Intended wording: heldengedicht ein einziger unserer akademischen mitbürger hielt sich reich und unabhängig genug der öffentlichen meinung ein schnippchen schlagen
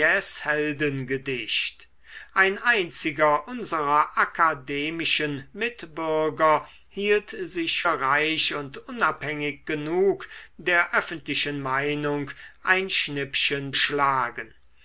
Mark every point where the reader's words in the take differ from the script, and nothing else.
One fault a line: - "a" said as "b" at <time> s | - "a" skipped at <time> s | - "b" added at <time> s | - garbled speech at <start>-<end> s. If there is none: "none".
none